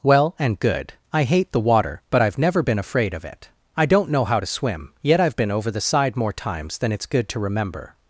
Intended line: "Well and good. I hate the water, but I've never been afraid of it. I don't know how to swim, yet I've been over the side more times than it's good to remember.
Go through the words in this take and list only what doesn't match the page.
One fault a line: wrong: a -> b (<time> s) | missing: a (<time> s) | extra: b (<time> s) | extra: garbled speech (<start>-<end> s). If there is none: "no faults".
no faults